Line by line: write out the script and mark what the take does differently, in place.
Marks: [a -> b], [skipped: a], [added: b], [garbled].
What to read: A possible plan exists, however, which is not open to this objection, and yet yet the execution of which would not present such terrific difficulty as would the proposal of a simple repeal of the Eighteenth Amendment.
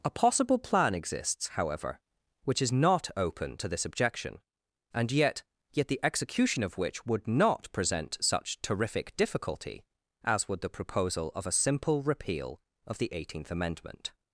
A possible plan exists, however, which is not open to this objection, and yet yet the execution of which would not present such terrific difficulty as would the proposal of a simple repeal of the Eighteenth Amendment.